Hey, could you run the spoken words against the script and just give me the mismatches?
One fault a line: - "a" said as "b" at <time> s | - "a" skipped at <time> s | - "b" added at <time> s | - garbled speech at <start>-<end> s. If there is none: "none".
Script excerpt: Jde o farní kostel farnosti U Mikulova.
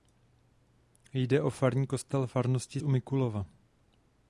none